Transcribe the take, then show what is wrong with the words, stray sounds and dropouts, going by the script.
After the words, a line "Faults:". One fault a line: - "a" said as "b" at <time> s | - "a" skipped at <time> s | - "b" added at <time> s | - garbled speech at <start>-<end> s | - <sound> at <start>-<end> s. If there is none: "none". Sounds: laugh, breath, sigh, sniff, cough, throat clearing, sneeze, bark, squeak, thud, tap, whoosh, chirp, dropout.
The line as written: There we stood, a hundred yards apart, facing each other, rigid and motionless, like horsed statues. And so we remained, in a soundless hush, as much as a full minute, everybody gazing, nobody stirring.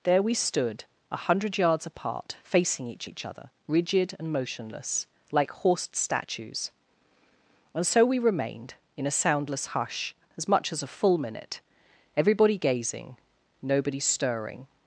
There we stood, a hundred yards apart, facing each each other, rigid and motionless, like horsed statues. And so we remained, in a soundless hush, as much as a full minute, everybody gazing, nobody stirring.
Faults:
- "each" added at 3.0 s